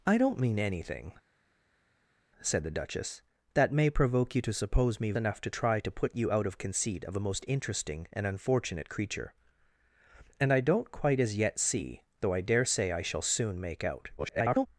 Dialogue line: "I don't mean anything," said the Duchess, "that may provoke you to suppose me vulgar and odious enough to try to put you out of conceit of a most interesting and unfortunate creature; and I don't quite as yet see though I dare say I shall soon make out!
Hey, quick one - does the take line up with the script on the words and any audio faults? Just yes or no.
no